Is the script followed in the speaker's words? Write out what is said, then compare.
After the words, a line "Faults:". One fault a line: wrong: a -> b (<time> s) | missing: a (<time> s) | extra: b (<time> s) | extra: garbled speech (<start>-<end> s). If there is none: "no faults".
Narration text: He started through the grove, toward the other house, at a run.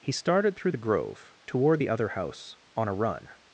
He started through the grove, toward the other house, on a run.
Faults:
wrong: at -> on (2.7 s)